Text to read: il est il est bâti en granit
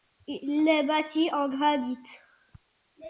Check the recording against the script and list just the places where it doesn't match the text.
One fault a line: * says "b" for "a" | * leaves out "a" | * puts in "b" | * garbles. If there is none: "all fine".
* leaves out "il est"